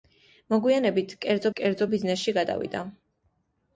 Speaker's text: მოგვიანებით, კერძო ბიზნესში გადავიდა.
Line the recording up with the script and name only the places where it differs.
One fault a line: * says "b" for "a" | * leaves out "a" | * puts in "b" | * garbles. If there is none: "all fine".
* puts in "კერძო"